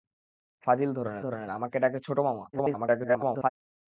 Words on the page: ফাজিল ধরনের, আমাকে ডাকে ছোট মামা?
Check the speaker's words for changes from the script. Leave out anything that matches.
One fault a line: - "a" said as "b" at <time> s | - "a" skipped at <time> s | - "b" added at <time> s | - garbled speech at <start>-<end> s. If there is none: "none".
- "ধরনের" added at 1.2 s
- garbled speech at 2.5-3.5 s